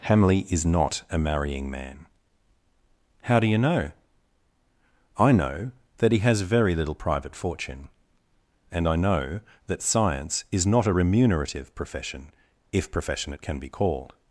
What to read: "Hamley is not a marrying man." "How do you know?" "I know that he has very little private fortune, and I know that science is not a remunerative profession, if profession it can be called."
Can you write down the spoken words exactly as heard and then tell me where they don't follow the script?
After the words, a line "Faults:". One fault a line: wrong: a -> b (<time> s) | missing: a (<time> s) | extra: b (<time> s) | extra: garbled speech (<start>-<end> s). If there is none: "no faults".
"Hamley is not a marrying man." "How do you know?" "I know that he has very little private fortune, and I know that science is not a remunerative profession, if profession it can be called."
Faults:
no faults